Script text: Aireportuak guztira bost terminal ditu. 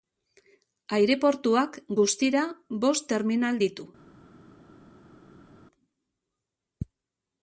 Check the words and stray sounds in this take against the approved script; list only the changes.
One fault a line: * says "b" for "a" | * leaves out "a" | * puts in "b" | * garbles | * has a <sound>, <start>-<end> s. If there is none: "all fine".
all fine